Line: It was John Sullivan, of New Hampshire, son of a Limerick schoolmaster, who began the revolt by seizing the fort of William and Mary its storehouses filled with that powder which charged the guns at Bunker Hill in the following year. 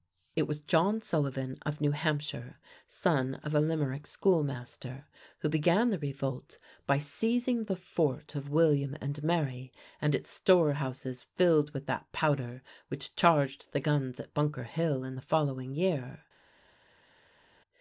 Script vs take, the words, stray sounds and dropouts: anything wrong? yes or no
yes